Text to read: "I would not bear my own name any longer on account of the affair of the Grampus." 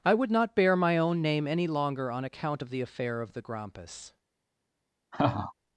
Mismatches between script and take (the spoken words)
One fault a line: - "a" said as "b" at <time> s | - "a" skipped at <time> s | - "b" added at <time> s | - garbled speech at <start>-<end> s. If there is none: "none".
none